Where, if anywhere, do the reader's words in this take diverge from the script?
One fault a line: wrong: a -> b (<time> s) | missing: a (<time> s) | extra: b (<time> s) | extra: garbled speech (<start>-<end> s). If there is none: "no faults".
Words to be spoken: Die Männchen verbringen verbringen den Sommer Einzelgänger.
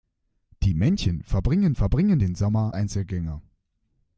no faults